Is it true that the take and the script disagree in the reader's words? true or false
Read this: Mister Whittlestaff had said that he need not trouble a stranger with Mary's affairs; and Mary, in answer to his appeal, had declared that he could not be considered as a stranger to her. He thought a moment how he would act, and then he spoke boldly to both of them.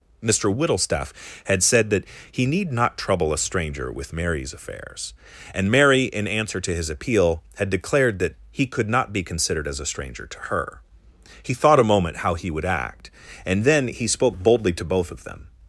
false